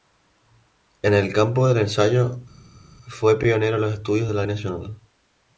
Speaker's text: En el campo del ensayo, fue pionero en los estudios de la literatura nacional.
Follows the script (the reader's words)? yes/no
no